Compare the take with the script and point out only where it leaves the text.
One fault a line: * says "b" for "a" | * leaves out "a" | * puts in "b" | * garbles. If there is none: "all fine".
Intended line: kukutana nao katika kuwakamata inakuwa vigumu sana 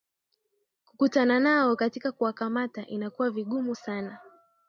all fine